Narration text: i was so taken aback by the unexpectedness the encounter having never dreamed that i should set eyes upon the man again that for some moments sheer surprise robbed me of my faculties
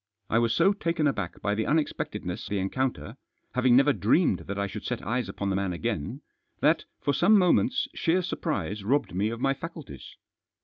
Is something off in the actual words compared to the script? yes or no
no